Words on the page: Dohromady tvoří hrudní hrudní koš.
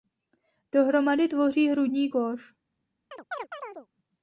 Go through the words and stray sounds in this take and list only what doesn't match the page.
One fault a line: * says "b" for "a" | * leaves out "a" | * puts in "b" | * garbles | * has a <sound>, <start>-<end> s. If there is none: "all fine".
* leaves out "hrudní"
* has a chirp, 3.1-3.9 s